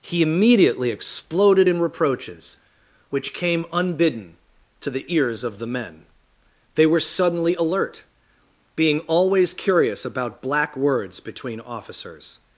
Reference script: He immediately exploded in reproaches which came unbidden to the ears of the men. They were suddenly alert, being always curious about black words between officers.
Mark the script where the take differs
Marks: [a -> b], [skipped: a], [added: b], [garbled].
He immediately exploded in reproaches which came unbidden to the ears of the men. They were suddenly alert, being always curious about black words between officers.